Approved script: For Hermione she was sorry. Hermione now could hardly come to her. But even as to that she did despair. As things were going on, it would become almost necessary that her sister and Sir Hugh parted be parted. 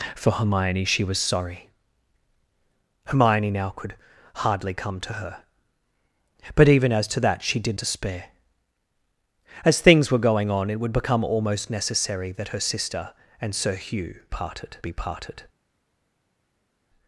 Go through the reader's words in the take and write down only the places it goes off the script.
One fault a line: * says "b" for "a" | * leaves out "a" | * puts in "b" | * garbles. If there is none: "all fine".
all fine